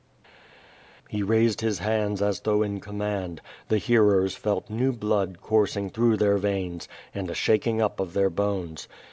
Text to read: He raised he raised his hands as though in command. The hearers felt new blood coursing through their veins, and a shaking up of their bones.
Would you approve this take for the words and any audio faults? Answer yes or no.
no